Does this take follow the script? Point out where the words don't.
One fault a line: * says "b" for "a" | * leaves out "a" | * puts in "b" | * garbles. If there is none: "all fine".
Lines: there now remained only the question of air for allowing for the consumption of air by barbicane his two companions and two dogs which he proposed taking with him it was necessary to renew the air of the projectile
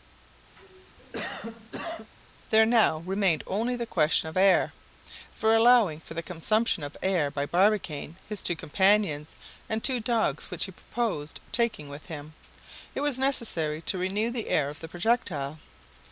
all fine